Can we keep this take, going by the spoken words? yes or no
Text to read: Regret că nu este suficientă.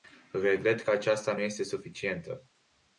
no